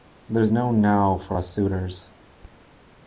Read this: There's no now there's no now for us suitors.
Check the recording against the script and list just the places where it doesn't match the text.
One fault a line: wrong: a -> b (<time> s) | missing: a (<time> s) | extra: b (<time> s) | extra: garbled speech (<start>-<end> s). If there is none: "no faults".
missing: there's no now (1.2 s)